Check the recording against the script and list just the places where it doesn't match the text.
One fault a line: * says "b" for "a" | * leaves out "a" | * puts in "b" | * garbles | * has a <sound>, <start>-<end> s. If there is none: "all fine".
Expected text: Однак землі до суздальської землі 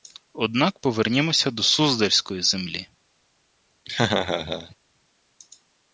* says "повернімося" for "землі"
* has a laugh, 3.9-4.8 s